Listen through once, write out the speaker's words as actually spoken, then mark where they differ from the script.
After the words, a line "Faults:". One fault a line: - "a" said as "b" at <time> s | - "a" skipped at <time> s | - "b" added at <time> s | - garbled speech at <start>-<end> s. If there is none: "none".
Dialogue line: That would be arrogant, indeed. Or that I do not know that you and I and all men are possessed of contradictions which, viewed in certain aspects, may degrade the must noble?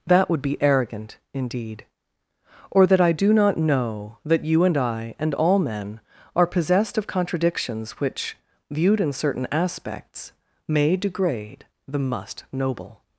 That would be arrogant, indeed. Or that I do not know that you and I and all men are possessed of contradictions which, viewed in certain aspects, may degrade the must noble?
Faults:
none